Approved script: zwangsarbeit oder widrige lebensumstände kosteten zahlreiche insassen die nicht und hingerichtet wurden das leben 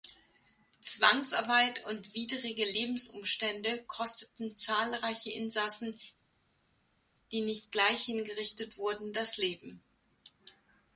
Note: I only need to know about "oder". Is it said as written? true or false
false